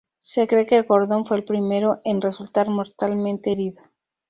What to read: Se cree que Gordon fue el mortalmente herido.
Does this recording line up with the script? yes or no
no